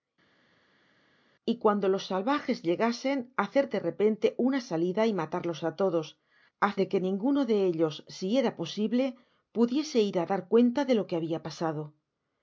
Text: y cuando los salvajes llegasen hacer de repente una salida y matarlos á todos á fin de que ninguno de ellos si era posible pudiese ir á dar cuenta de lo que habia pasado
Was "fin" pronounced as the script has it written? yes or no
no